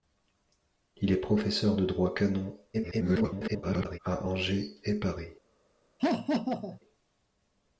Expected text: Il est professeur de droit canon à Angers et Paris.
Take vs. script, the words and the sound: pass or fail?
fail